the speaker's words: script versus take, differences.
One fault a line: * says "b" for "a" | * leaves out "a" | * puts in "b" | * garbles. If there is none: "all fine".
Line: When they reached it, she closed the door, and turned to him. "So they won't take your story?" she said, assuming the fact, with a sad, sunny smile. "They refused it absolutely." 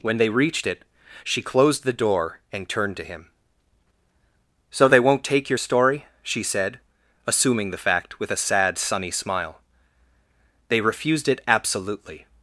all fine